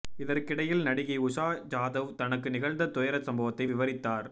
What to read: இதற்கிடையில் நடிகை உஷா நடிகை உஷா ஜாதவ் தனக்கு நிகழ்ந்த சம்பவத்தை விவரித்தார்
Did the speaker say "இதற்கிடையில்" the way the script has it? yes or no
yes